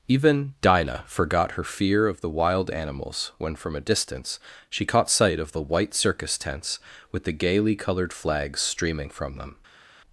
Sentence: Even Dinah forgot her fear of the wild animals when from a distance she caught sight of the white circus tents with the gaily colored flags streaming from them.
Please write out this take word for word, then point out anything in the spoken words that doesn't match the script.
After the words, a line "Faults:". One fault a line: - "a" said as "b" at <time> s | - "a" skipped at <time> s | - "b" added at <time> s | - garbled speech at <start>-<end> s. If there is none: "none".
Even Dinah forgot her fear of the wild animals when from a distance she caught sight of the white circus tents with the gaily colored flags streaming from them.
Faults:
none